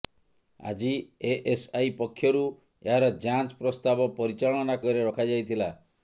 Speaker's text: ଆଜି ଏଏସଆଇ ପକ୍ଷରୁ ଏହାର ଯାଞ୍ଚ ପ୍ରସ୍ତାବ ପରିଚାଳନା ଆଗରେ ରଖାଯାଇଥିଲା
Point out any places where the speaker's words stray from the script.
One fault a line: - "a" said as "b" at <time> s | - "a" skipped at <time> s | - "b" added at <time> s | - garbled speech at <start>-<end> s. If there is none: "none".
none